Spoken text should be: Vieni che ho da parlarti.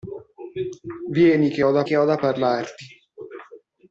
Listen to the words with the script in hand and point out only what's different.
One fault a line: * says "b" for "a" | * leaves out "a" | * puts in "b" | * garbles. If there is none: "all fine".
* puts in "che ho da"